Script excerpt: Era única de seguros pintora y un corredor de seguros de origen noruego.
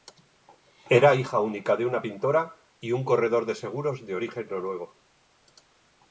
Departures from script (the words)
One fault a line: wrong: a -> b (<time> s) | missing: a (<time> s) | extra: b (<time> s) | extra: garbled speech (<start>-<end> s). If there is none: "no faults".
extra: hija (1.1 s)
wrong: seguros -> una (1.9 s)